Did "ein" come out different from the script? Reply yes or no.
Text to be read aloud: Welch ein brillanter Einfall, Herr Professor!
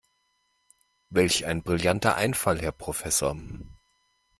no